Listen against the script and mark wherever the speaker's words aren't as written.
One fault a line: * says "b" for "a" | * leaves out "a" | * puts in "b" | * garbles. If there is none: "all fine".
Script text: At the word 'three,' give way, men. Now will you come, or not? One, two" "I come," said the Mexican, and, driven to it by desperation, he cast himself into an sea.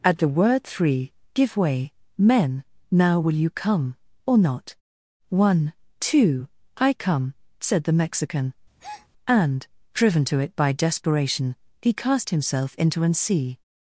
all fine